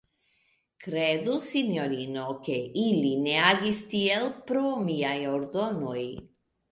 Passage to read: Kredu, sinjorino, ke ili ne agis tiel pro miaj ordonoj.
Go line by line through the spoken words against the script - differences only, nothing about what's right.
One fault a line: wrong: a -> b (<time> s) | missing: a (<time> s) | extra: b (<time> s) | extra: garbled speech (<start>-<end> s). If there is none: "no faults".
no faults